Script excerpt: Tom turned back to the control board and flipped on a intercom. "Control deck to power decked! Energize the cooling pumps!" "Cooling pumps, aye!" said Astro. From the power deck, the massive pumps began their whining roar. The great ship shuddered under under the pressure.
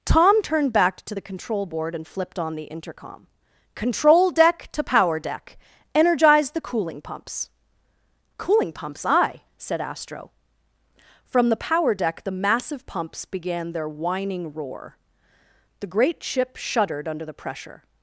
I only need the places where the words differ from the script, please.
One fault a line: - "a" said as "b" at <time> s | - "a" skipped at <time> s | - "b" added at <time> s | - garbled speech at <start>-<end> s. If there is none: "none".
- "a" said as "the" at 2.5 s
- "decked" said as "deck" at 5.2 s
- "under" skipped at 17.2 s